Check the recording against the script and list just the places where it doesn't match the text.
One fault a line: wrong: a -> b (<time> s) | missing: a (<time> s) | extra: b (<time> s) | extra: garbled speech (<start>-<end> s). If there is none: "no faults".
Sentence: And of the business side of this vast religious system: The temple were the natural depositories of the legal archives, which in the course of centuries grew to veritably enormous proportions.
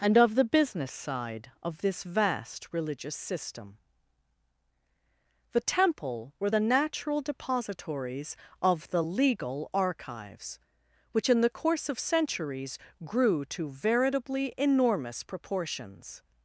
no faults